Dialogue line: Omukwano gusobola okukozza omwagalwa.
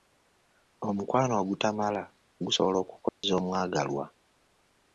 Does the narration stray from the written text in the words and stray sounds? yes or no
yes